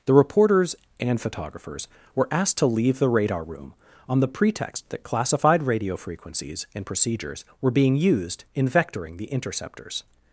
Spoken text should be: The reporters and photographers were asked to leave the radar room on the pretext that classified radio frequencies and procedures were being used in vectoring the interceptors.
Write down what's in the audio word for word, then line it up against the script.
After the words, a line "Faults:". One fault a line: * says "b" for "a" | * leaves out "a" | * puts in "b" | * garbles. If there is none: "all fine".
The reporters and photographers were asked to leave the radar room on the pretext that classified radio frequencies and procedures were being used in vectoring the interceptors.
Faults:
all fine